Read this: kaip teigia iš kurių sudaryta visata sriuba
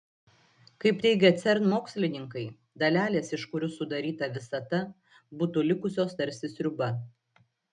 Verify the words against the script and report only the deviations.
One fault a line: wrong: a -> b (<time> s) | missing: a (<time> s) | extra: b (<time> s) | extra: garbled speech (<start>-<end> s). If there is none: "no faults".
extra: cern mokslininkai dalelės (1.4 s)
extra: būtų likusios tarsi (5.4 s)